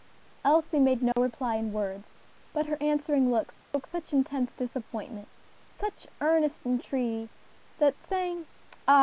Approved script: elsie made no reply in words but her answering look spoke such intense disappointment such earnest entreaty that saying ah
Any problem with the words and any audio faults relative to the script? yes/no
yes